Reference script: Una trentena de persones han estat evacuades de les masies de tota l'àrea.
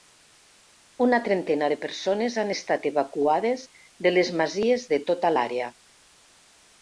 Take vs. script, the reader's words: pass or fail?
pass